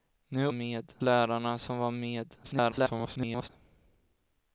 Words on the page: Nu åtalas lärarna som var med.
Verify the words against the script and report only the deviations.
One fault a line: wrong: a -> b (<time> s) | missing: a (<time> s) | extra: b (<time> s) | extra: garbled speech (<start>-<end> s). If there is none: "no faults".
wrong: åtalas -> med (0.5 s)
extra: garbled speech (2.4-3.5 s)